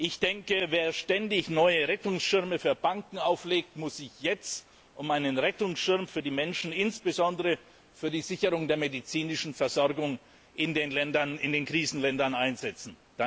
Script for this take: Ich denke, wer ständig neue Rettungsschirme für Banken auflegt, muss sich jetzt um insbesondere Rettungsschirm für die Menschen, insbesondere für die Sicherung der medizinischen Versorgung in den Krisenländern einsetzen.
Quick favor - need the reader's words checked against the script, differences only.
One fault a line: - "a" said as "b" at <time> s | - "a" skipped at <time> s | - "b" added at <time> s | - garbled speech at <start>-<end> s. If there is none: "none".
- "insbesondere" said as "einen" at 5.1 s